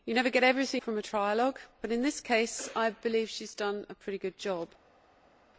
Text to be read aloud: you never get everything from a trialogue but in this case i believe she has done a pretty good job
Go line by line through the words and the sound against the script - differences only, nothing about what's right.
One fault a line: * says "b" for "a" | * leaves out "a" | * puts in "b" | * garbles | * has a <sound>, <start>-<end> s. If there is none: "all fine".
all fine